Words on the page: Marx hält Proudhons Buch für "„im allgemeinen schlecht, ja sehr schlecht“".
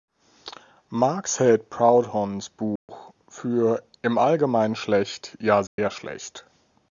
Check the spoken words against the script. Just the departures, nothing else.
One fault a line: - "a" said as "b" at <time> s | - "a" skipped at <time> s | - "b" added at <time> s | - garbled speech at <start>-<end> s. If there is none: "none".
none